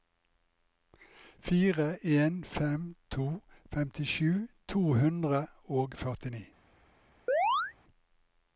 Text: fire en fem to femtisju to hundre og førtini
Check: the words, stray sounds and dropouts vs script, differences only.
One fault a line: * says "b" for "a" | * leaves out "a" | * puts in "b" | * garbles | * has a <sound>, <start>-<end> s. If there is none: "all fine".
* has a chirp, 7.3-7.7 s